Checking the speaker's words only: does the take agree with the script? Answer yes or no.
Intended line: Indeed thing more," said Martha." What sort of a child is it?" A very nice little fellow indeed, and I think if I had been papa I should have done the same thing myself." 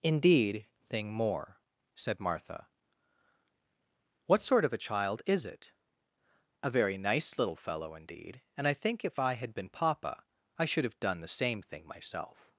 yes